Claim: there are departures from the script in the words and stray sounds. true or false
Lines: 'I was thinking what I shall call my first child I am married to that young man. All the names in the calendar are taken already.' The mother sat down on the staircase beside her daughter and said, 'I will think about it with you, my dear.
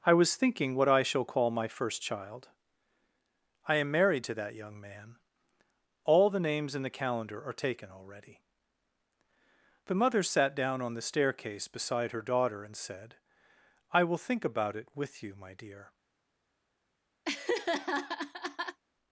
true